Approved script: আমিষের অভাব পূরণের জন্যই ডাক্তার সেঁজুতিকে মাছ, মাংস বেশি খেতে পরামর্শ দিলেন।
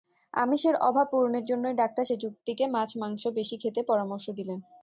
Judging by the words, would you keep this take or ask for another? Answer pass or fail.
pass